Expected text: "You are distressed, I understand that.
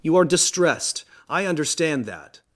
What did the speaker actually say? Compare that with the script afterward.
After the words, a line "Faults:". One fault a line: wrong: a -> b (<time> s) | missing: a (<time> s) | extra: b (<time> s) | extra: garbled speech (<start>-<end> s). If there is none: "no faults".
"You are distressed, I understand that.
Faults:
no faults